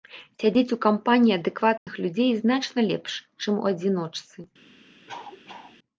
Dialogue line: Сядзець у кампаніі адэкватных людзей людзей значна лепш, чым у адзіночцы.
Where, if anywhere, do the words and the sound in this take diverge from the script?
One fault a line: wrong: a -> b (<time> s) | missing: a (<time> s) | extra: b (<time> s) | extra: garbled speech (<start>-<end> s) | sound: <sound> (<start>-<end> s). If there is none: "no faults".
sound: dropout (1.8-1.9 s)
missing: людзей (2.3 s)
sound: cough (5.1-5.8 s)